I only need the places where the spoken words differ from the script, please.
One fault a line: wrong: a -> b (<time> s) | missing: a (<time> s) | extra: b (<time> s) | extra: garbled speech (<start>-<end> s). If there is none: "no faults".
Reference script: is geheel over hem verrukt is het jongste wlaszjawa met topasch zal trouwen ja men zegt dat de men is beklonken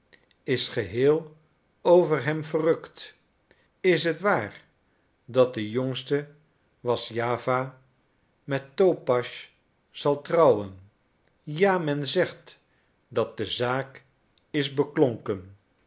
extra: waar dat de (4.2 s)
wrong: men -> zaak (13.5 s)